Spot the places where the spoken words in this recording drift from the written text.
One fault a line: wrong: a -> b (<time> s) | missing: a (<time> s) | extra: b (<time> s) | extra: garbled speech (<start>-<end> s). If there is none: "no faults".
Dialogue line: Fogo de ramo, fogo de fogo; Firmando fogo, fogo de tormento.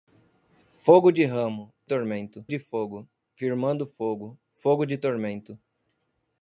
wrong: fogo -> tormento (1.8 s)